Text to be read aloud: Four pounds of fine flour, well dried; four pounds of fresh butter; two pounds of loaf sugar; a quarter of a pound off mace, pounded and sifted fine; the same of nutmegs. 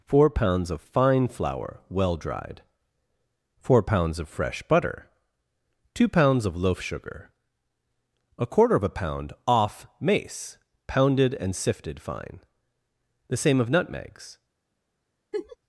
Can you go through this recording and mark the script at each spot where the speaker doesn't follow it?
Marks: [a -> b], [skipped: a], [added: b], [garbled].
Four pounds of fine flour, well dried; four pounds of fresh butter; two pounds of loaf sugar; a quarter of a pound off mace, pounded and sifted fine; the same of nutmegs.